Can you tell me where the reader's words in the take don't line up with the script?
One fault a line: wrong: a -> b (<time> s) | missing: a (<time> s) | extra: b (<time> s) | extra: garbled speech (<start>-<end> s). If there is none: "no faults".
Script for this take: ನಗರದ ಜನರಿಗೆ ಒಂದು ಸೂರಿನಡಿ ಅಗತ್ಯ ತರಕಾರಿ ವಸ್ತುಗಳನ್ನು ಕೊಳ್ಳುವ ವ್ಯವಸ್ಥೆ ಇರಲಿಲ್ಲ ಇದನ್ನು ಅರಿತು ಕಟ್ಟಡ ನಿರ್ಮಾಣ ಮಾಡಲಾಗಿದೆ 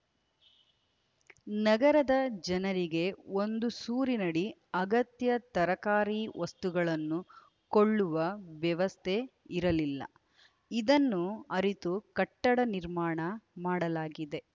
no faults